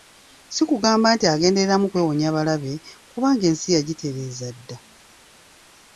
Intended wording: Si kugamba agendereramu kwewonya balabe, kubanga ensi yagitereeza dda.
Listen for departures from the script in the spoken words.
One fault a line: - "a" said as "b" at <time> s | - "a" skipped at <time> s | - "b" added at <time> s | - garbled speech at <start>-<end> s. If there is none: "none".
- "nti" added at 1.1 s